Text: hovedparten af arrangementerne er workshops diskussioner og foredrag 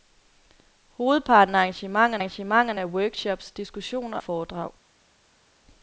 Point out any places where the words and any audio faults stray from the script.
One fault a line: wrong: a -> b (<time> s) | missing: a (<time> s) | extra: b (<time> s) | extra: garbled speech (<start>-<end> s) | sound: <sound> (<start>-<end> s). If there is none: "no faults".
extra: arrangementerne (2.2 s)
missing: og (4.2 s)